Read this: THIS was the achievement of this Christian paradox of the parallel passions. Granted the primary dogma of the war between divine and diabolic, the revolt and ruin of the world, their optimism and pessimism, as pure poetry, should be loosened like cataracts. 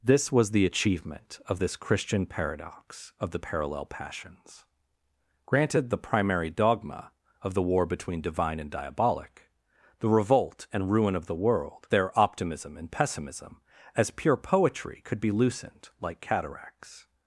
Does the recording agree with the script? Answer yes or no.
no